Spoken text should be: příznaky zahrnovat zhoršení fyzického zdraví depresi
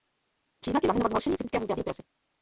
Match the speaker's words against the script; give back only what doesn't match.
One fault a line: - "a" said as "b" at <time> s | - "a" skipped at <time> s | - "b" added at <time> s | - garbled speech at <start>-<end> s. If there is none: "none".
none